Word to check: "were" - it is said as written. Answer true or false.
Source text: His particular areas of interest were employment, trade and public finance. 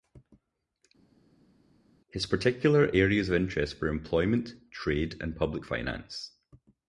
true